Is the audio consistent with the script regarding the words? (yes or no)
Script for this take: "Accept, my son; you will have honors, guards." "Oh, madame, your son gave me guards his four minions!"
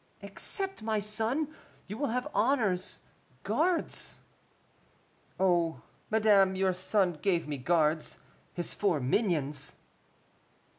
yes